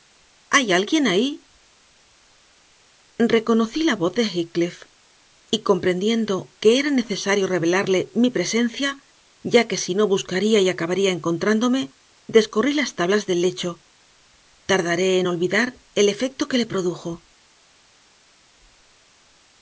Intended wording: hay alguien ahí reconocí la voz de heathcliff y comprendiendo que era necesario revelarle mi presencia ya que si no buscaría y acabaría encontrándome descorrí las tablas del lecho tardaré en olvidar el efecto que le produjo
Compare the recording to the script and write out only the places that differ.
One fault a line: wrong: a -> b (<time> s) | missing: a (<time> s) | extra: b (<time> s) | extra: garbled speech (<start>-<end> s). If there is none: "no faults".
no faults